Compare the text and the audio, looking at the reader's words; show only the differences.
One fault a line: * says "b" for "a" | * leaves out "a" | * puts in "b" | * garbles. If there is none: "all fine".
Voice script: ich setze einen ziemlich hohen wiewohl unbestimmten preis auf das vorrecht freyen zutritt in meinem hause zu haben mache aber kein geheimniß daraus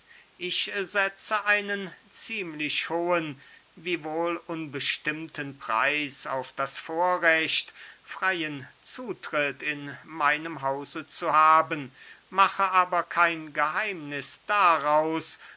all fine